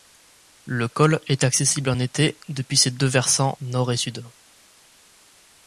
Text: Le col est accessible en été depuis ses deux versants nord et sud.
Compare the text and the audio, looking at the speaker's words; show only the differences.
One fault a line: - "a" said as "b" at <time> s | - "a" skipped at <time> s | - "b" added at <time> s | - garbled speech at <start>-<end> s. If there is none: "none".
none